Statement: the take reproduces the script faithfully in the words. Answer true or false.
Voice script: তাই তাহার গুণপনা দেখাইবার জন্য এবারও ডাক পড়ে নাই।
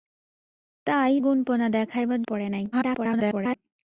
false